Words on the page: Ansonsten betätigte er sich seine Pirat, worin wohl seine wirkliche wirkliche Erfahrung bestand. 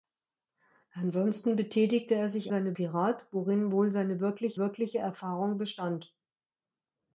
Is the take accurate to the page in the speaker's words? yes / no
yes